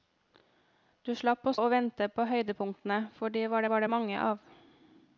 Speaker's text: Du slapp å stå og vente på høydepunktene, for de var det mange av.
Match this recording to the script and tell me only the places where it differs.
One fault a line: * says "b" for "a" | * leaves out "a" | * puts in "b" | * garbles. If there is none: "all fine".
* leaves out "stå"
* puts in "var"